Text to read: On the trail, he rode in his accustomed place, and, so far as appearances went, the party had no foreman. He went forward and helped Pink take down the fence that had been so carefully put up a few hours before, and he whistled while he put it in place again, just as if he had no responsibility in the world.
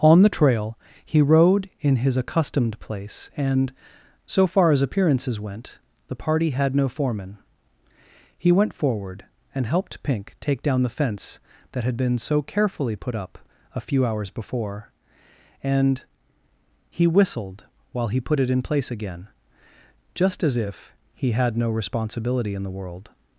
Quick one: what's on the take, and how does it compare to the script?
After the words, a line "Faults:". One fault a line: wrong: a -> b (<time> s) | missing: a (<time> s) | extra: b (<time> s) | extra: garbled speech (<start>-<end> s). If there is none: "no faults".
On the trail, he rode in his accustomed place, and, so far as appearances went, the party had no foreman. He went forward and helped Pink take down the fence that had been so carefully put up a few hours before, and he whistled while he put it in place again, just as if he had no responsibility in the world.
Faults:
no faults